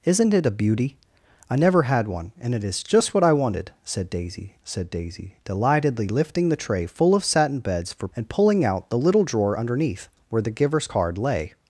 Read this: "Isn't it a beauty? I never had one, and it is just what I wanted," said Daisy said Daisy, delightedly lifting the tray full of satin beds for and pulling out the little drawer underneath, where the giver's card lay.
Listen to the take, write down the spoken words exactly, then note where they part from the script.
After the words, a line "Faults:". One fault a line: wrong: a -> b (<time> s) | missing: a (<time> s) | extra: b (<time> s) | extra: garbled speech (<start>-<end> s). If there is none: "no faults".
"Isn't it a beauty? I never had one, and it is just what I wanted," said Daisy said Daisy, delightedly lifting the tray full of satin beds for and pulling out the little drawer underneath, where the giver's card lay.
Faults:
no faults